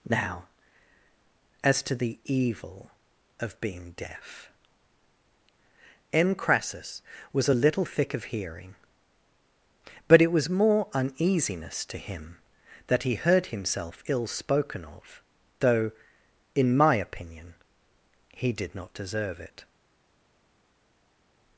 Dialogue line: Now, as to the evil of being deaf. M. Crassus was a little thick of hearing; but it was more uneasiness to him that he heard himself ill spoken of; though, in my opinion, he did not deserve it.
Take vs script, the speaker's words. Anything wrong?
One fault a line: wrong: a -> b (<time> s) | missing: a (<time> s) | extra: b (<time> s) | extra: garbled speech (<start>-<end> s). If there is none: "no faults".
no faults